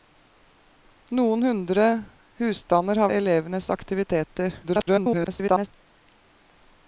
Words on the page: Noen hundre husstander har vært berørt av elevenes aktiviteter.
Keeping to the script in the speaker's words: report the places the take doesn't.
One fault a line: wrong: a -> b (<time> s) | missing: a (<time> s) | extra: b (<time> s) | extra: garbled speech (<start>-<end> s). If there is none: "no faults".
missing: vært berørt (3.1 s)
extra: garbled speech (4.6-5.7 s)